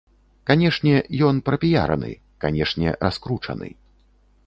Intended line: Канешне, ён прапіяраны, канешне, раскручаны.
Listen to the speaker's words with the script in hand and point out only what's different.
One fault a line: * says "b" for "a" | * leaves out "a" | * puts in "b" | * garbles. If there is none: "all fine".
all fine